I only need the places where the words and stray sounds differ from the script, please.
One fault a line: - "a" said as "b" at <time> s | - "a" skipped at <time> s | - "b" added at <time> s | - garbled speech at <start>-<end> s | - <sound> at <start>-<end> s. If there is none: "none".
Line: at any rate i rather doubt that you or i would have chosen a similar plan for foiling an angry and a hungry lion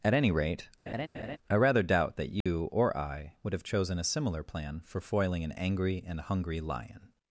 - laugh at 0.9-1.4 s
- dropout at 2.4-2.5 s
- "a" skipped at 6.2 s